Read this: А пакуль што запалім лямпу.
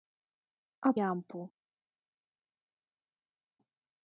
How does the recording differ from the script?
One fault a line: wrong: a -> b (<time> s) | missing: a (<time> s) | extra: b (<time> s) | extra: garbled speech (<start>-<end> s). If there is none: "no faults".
missing: пакуль што запалім (0.9 s)